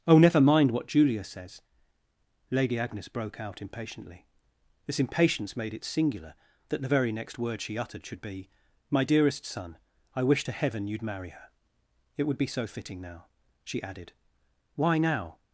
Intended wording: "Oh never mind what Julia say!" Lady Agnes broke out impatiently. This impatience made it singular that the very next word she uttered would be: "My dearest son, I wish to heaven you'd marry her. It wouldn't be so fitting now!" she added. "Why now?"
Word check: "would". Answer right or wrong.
wrong